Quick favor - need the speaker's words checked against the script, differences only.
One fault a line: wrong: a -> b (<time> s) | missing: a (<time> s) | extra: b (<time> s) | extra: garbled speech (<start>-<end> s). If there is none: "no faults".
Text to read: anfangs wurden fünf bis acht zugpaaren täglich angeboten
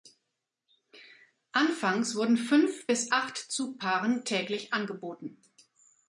no faults